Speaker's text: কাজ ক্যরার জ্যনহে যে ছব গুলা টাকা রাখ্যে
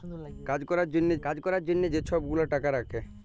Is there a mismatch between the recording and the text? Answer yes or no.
yes